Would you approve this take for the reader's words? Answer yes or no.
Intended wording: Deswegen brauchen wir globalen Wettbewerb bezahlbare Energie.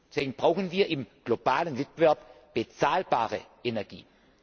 no